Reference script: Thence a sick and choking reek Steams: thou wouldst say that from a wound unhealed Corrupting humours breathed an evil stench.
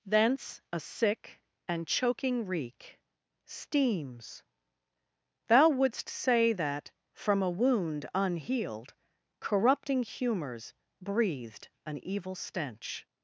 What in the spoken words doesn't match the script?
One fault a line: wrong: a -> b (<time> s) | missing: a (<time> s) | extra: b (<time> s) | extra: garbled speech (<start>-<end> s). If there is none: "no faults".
no faults